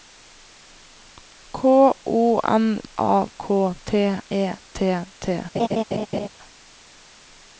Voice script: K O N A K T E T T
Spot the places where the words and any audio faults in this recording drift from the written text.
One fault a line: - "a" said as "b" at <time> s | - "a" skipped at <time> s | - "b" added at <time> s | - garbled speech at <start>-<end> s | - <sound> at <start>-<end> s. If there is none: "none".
- laugh at 5.5-6.3 s